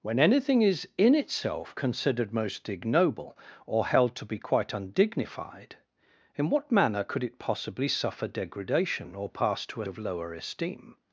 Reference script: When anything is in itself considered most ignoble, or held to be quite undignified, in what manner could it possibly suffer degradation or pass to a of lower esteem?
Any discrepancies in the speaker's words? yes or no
no